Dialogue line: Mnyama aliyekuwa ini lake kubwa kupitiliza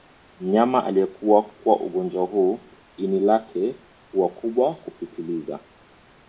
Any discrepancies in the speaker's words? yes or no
yes